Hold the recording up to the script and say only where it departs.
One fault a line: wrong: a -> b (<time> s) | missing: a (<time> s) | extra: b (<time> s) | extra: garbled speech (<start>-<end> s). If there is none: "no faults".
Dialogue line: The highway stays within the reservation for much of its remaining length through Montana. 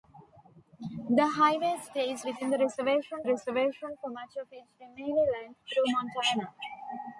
extra: reservation (3.2 s)